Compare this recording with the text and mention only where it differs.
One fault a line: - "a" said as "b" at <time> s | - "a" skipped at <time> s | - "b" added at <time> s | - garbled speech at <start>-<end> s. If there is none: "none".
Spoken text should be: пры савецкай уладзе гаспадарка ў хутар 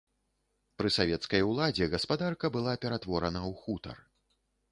- "была ператворана" added at 2.6 s